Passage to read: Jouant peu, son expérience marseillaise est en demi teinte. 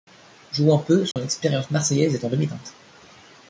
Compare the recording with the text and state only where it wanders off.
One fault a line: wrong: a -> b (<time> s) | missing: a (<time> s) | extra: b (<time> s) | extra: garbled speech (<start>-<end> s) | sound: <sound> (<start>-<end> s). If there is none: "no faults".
sound: dropout (1.1-1.2 s)